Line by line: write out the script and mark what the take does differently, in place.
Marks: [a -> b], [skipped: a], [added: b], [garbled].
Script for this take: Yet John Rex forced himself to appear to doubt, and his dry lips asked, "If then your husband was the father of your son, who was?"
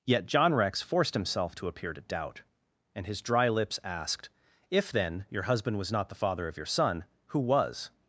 Yet John Rex forced himself to appear to doubt, and his dry lips asked, "If then your husband was [added: not] the father of your son, who was?"